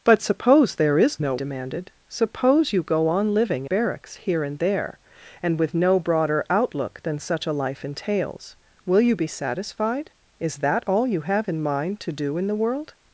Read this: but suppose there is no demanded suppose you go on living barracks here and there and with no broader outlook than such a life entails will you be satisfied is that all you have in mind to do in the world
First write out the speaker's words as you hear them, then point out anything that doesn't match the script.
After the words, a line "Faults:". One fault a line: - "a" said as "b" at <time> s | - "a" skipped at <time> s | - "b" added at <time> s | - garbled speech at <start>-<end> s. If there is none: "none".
but suppose there is no demanded suppose you go on living barracks here and there and with no broader outlook than such a life entails will you be satisfied is that all you have in mind to do in the world
Faults:
none